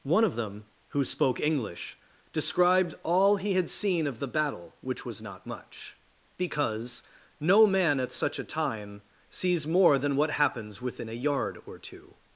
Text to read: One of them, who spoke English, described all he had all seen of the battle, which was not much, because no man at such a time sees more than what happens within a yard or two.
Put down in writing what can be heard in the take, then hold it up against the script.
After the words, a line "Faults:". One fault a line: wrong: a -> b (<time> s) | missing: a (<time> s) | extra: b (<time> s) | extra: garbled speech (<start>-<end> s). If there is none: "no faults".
One of them, who spoke English, described all he had seen of the battle, which was not much, because no man at such a time sees more than what happens within a yard or two.
Faults:
missing: all (3.7 s)